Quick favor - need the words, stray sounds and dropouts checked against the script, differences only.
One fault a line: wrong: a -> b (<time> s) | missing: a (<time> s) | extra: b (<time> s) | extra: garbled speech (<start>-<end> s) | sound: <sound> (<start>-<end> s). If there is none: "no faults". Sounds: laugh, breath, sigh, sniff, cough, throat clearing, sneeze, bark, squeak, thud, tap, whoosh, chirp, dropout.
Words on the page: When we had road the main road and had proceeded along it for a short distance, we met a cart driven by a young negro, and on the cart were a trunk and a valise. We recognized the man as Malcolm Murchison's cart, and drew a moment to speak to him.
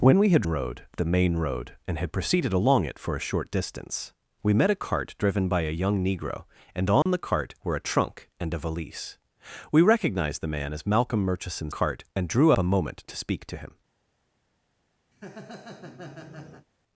sound: dropout (7.0-7.1 s)
sound: laugh (15.1-16.7 s)